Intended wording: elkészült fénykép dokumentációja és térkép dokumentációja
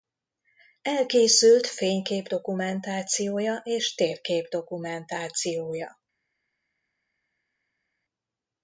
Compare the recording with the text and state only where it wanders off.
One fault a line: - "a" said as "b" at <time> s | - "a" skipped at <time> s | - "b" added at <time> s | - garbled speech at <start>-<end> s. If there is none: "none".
none